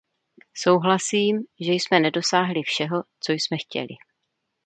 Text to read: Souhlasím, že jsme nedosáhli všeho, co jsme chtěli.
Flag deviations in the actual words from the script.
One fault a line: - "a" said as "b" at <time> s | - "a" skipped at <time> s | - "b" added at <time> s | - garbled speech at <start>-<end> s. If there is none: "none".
none